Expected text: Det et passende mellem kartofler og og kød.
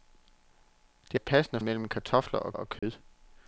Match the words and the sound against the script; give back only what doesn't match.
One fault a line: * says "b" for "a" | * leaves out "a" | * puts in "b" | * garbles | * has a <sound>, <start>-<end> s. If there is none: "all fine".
* has a dropout, 2.8-2.8 s